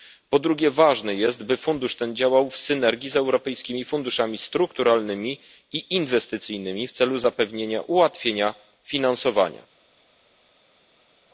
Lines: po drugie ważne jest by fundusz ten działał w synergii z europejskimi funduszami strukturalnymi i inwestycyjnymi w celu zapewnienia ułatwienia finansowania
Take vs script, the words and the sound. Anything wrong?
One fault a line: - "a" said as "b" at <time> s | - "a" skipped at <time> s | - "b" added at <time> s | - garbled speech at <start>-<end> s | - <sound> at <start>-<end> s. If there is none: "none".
none